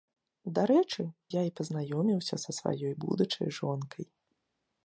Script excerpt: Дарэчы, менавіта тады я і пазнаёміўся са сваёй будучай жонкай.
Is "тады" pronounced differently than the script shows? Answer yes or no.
yes